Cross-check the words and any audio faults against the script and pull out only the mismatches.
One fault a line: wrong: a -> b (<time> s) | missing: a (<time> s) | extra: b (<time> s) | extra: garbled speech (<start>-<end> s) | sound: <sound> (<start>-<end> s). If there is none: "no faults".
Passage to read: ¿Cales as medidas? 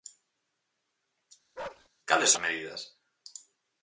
sound: bark (1.6-1.9 s)